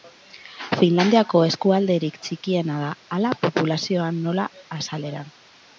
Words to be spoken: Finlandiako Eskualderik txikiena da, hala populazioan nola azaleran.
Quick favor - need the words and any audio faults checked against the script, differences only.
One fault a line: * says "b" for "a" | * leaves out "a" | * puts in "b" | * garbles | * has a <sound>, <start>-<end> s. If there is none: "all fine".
all fine